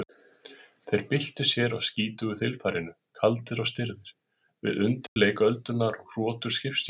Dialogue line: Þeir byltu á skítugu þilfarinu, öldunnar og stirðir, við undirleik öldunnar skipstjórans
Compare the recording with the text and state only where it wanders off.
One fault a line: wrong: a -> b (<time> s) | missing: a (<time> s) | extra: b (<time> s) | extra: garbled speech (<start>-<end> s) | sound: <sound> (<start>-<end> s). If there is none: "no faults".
extra: sér (1.5 s)
wrong: öldunnar -> kaldir (3.2 s)
sound: dropout (5.1-5.2 s)
extra: og hrotur (6.0 s)